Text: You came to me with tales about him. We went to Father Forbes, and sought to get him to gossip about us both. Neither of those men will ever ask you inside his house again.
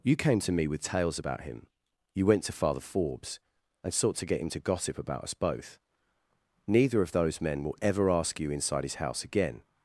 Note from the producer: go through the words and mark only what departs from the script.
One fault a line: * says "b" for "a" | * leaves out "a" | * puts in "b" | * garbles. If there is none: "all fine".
* says "You" for "We"